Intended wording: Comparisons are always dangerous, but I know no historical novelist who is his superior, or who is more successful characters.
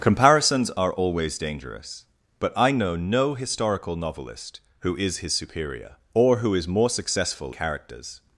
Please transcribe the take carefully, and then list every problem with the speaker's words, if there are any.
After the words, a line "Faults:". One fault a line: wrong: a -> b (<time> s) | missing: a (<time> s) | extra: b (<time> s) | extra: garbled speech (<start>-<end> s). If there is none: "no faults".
Comparisons are always dangerous, but I know no historical novelist who is his superior, or who is more successful characters.
Faults:
no faults